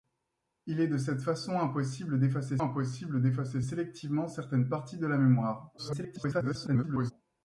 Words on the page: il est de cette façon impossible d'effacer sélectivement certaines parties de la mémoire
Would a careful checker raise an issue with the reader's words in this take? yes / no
yes